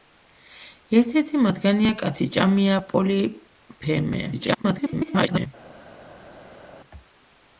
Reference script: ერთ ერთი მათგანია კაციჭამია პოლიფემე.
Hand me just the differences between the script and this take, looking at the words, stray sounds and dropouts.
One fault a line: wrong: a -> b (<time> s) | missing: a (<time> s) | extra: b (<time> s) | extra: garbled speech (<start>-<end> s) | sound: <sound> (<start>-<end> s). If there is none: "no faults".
extra: garbled speech (4.3-5.5 s)